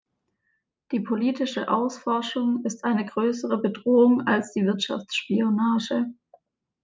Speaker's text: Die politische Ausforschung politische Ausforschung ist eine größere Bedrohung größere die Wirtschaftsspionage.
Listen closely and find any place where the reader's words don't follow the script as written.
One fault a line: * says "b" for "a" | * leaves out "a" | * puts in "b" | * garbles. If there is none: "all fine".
* leaves out "politische Ausforschung"
* says "als" for "größere"